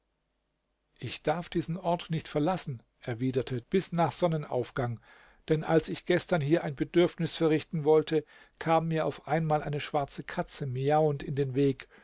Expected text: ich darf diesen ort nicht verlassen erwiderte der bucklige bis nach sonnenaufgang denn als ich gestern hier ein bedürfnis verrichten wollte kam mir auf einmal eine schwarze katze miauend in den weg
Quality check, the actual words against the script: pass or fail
fail